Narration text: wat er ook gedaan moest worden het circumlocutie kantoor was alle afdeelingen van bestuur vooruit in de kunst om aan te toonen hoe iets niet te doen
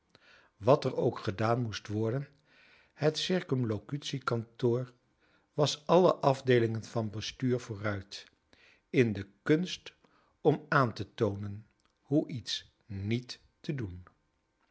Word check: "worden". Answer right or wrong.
right